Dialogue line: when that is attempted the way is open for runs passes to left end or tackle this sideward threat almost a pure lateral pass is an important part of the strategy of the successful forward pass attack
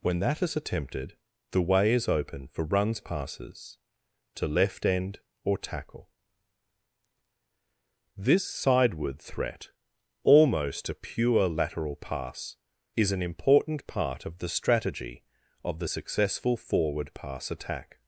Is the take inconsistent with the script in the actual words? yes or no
no